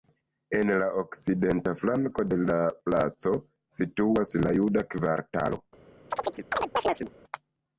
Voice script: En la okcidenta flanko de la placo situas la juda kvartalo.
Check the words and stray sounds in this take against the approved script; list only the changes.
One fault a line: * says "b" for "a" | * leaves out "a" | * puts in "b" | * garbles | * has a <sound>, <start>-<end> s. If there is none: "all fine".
* has a chirp, 6.1-7.1 s